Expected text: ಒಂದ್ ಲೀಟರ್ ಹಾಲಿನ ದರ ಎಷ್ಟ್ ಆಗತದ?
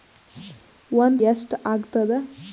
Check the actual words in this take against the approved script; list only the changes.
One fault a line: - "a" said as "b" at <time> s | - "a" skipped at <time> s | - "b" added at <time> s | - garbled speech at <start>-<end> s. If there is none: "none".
- "ಲೀಟರ್ ಹಾಲಿನ ದರ" skipped at 1.2 s